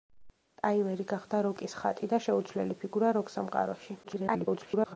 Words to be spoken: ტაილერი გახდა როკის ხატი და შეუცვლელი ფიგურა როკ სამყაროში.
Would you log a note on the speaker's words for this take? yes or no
yes